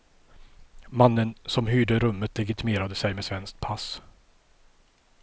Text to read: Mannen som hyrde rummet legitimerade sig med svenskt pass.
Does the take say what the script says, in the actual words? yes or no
yes